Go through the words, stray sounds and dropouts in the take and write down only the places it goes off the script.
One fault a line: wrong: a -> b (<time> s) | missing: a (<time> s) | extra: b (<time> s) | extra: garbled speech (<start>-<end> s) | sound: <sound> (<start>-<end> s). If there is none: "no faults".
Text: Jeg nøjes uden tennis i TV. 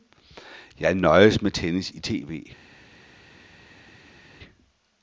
wrong: uden -> med (1.4 s)